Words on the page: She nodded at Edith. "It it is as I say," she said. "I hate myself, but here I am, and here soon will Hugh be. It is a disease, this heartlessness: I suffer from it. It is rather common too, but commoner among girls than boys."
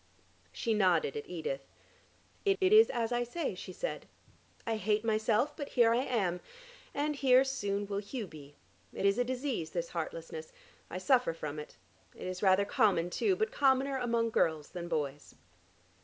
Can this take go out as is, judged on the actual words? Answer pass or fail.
pass